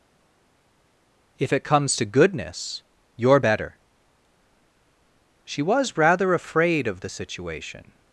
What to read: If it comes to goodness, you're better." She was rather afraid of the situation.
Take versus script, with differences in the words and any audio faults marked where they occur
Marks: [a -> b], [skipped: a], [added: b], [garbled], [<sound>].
If it comes to goodness, you're better." She was rather afraid of the situation.